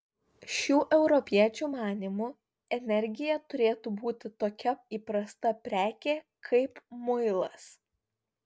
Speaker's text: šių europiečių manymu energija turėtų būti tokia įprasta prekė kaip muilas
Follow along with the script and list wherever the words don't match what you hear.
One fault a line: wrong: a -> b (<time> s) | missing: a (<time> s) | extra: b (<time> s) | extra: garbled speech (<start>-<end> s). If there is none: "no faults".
no faults